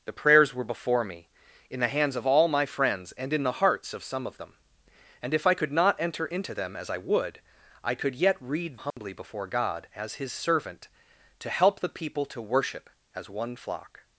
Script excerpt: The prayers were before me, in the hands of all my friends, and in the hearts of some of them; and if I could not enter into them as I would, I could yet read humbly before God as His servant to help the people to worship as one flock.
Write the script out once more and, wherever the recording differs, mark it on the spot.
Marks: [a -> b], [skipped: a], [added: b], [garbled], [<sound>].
The prayers were before me, in the hands of all my friends, and in the hearts of some of them; and if I could not enter into them as I would, I could yet read humbly [dropout] before God as His servant to help the people to worship as one flock.